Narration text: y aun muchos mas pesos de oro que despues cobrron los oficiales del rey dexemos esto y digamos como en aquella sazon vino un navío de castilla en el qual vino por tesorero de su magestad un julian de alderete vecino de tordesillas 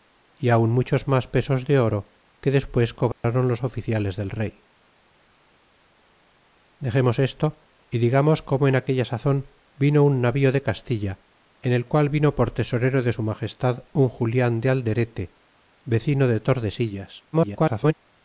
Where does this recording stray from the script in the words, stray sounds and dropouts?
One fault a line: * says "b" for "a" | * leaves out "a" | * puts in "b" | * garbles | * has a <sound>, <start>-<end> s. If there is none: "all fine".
* has a dropout, 3.1-3.2 s
* garbles